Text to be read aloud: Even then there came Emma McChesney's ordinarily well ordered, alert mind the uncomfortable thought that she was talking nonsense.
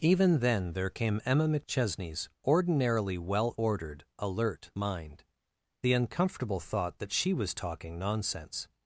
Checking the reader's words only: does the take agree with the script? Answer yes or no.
yes